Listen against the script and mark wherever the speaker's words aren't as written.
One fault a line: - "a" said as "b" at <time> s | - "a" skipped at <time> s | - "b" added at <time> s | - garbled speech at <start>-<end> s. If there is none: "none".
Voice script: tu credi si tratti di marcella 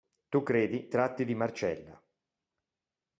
- "si" skipped at 0.9 s